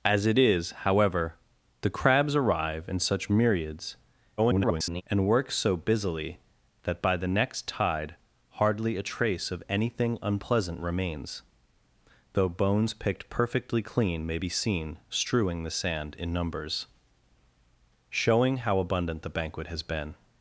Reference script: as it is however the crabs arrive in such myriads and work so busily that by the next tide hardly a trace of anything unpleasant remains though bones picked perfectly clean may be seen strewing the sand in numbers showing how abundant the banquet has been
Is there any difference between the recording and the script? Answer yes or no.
yes